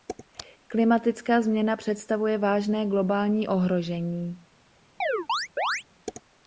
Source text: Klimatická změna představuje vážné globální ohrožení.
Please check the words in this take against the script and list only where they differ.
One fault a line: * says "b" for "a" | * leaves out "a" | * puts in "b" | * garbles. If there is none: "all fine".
all fine